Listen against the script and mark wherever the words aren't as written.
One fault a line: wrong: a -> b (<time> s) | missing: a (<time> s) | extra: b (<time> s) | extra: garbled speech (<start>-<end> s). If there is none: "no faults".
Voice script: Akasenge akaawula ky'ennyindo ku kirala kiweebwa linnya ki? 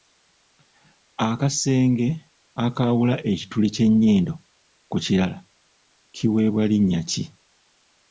extra: ekituli (3.3 s)